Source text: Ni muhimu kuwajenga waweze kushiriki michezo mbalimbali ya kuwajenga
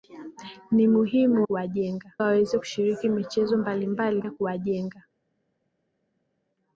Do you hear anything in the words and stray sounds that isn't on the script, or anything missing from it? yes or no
no